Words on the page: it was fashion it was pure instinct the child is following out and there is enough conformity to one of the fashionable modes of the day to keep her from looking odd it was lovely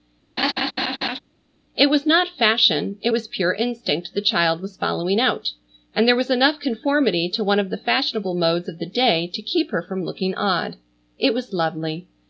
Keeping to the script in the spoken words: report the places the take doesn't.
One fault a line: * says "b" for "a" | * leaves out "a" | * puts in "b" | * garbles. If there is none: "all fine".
* puts in "not"
* says "was" for "is"
* says "was" for "is"